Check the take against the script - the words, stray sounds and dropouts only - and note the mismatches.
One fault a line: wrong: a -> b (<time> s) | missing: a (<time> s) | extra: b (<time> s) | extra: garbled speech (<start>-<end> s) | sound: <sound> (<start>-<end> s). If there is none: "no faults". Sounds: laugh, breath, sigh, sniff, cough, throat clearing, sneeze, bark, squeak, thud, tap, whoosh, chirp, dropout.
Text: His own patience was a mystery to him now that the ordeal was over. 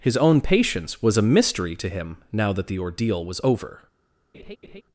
sound: laugh (4.3-4.8 s)